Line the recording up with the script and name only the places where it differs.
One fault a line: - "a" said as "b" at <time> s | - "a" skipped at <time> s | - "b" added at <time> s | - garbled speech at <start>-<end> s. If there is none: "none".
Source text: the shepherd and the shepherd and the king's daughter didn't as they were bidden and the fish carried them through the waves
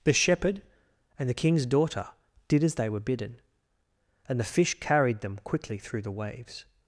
- "shepherd and the" skipped at 1.4 s
- "didn't" said as "did" at 2.5 s
- "quickly" added at 5.4 s